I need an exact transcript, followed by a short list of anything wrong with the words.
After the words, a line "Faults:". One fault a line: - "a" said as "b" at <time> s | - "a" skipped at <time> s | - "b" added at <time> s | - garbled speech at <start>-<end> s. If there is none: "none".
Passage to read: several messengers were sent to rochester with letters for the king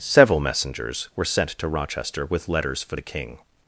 several messengers were sent to rochester with letters for the king
Faults:
none